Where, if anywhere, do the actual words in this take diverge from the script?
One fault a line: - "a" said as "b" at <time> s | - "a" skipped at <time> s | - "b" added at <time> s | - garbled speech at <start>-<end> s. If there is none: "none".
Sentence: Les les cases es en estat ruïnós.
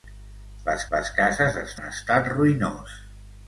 none